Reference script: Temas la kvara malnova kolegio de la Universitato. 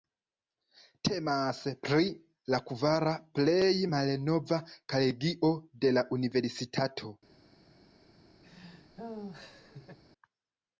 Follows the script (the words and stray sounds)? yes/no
no